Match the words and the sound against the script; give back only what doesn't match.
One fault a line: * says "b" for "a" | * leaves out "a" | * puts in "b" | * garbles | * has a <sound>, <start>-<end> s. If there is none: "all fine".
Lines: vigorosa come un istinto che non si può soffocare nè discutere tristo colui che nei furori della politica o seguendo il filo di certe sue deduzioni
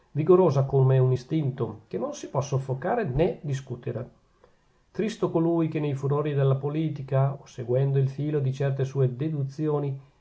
all fine